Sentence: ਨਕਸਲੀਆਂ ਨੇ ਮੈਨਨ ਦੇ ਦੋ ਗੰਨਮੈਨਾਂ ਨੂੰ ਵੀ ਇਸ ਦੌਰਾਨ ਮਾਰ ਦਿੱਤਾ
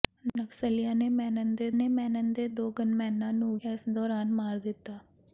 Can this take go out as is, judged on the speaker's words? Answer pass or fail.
fail